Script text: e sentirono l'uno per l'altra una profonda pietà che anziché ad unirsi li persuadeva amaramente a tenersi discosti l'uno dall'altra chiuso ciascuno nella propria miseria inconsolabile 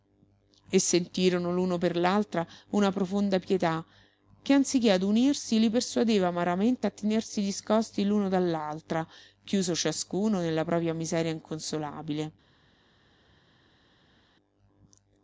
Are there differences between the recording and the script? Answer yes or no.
no